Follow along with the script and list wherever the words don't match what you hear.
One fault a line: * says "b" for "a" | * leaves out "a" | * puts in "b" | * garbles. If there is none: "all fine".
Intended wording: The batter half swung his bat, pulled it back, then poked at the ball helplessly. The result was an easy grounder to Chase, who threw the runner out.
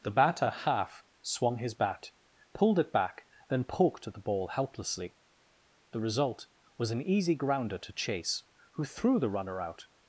all fine